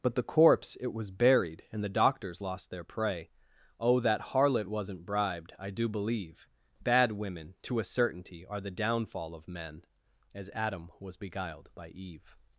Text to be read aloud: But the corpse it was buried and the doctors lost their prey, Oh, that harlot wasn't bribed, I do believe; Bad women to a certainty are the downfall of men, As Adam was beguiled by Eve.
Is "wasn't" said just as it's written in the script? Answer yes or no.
yes